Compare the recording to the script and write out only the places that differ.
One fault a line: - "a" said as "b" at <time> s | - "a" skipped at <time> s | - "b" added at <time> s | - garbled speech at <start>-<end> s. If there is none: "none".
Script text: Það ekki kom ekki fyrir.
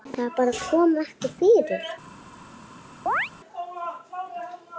- "ekki" said as "bara" at 0.4 s